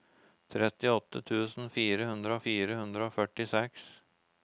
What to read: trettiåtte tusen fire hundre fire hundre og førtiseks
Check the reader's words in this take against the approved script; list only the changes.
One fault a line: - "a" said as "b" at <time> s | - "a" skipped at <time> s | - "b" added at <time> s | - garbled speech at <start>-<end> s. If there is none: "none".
none